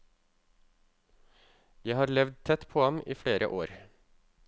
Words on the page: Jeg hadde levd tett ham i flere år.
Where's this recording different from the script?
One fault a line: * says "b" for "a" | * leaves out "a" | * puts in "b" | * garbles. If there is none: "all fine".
* says "har" for "hadde"
* puts in "på"